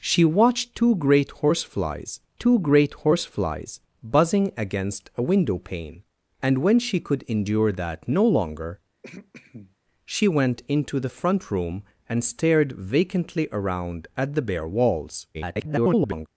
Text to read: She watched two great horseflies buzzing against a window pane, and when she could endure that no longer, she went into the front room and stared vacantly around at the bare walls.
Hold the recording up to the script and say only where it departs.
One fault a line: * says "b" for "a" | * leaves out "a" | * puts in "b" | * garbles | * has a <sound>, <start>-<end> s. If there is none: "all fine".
* puts in "two great horseflies"
* has a throat clearing, 9.0-9.8 s
* garbles